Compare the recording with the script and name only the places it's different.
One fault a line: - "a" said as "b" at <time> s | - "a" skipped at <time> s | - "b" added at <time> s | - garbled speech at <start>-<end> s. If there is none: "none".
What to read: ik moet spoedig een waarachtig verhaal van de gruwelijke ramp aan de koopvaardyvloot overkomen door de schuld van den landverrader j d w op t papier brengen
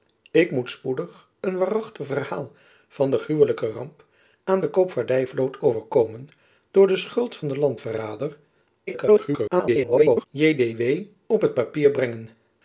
- garbled speech at 8.9-10.3 s